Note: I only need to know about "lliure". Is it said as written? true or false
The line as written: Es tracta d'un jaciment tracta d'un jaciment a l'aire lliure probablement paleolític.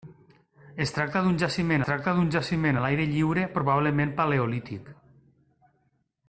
true